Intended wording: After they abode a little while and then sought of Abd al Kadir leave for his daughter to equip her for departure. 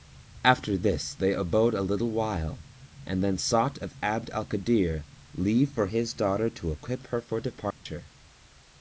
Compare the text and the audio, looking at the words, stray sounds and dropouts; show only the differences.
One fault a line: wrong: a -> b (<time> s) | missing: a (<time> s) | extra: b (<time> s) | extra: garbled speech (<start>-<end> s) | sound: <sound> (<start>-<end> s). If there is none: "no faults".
extra: this (0.8 s)
sound: dropout (7.7-7.9 s)